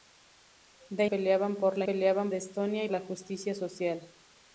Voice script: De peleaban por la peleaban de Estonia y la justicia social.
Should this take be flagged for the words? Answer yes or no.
no